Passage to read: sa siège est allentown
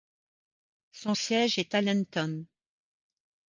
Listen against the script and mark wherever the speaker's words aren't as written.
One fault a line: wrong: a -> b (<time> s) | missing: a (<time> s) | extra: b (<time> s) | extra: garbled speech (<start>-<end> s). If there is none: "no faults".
wrong: sa -> son (0.9 s)